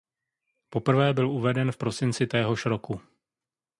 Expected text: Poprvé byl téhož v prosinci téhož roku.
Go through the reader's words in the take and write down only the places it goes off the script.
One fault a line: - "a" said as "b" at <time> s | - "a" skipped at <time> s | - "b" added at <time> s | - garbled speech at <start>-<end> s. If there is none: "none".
- "téhož" said as "uveden" at 1.3 s